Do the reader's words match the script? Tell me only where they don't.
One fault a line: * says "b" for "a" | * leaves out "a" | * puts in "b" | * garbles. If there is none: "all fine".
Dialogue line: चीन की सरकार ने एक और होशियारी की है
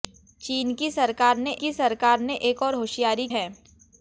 * puts in "की सरकार ने"
* leaves out "की"